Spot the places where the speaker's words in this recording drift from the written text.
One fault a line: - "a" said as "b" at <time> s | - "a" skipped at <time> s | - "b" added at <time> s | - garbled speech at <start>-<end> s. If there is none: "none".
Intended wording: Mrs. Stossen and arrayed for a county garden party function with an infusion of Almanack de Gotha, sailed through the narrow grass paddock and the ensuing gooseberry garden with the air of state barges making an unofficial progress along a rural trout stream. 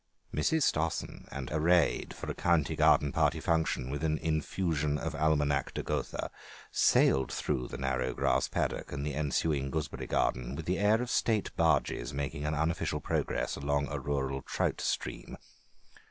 none